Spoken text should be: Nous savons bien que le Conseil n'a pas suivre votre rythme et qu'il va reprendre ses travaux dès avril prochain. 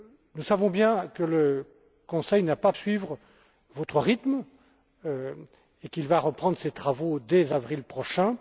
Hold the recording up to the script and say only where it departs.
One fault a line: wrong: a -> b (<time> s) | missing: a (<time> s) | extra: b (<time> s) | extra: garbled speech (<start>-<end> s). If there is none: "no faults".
no faults